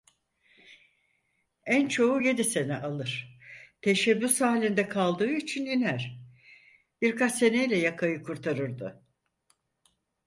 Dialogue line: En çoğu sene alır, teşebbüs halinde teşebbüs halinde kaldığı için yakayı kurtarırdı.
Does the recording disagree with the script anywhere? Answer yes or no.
yes